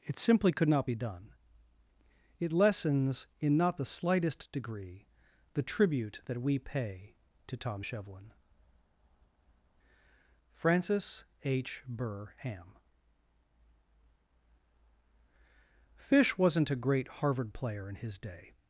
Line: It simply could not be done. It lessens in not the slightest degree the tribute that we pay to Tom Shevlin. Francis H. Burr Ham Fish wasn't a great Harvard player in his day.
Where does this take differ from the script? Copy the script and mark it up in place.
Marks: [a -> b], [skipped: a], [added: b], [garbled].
It simply could not be done. It lessens in not the slightest degree the tribute that we pay to Tom Shevlin. Francis H. Burr Ham Fish wasn't a great Harvard player in his day.